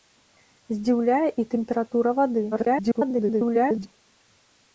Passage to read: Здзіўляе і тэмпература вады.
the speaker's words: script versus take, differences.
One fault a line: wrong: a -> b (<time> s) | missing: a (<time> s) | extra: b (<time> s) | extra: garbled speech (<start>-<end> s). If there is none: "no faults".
extra: garbled speech (2.5-3.9 s)